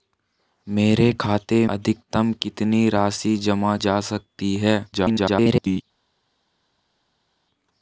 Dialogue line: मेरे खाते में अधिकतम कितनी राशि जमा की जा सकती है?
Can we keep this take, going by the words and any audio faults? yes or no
no